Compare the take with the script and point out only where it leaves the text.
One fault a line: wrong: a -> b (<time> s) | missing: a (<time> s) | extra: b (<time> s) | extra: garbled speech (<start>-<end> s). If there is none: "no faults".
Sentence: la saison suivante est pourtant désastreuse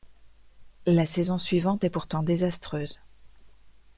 no faults